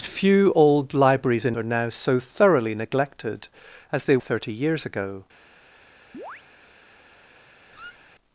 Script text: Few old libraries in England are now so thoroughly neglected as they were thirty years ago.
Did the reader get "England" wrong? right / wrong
wrong